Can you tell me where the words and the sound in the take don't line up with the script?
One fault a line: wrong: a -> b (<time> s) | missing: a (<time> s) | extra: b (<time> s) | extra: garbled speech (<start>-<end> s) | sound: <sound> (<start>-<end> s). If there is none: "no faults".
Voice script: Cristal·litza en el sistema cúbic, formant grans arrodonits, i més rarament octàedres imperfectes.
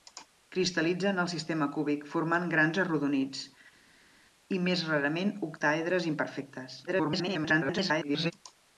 extra: garbled speech (6.9-8.3 s)